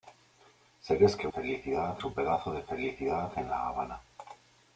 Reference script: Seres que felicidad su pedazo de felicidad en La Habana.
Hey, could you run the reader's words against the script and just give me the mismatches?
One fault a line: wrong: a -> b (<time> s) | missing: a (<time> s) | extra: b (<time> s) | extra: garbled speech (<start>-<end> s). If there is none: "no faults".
no faults